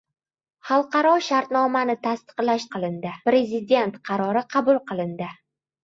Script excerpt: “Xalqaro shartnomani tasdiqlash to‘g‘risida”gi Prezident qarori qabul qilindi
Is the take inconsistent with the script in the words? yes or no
yes